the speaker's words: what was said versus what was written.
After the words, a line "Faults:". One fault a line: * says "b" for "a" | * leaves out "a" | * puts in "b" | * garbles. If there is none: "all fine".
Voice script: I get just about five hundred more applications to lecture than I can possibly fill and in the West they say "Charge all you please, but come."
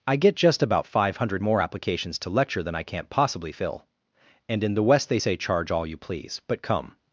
I get just about five hundred more applications to lecture than I can't possibly fill and in the West they say "Charge all you please, but come."
Faults:
* says "can't" for "can"